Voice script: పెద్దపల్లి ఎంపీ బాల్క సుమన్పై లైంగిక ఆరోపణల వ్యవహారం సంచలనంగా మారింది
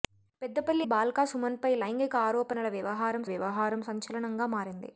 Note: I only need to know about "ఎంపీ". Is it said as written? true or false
false